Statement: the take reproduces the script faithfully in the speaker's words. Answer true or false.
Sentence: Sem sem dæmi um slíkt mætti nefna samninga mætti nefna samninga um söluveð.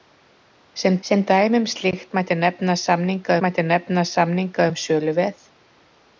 true